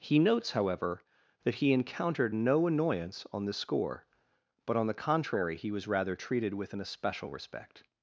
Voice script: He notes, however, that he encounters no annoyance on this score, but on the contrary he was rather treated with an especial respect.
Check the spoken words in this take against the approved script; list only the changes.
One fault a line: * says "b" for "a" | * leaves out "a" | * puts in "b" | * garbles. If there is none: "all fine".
* says "encountered" for "encounters"